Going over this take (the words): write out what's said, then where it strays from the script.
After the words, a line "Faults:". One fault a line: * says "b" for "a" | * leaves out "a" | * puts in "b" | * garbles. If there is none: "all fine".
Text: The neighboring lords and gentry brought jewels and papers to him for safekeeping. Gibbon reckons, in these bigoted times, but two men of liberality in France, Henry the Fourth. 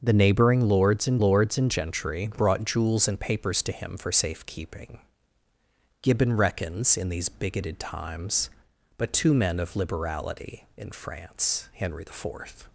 The neighboring lords and lords and gentry brought jewels and papers to him for safekeeping. Gibbon reckons, in these bigoted times, but two men of liberality in France, Henry the Fourth.
Faults:
* puts in "lords and"